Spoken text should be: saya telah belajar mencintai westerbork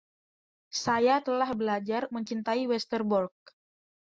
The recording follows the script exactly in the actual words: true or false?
true